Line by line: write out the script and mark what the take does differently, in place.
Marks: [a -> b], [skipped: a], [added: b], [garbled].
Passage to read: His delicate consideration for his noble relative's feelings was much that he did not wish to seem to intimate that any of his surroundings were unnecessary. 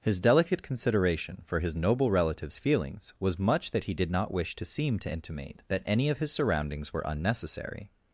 His delicate consideration for his noble relative's feelings was much that he did not wish to seem to intimate that any of his surroundings were unnecessary.